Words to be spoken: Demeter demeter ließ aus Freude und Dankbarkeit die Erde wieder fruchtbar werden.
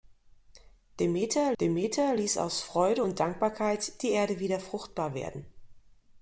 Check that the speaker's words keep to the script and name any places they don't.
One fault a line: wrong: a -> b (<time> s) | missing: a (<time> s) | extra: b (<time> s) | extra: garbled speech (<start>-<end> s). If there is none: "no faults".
no faults